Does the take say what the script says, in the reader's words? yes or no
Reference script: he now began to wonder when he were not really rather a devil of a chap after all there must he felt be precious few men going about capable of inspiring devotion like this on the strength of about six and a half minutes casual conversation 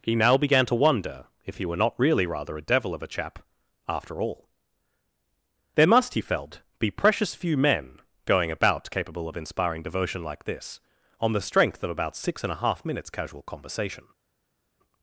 no